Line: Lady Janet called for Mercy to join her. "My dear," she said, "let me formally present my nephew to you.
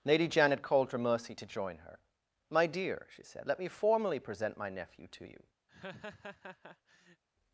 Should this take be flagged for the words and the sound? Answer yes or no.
yes